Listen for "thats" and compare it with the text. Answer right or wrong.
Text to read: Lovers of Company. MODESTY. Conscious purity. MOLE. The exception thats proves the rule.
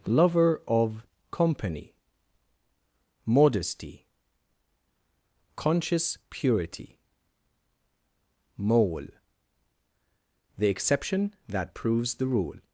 wrong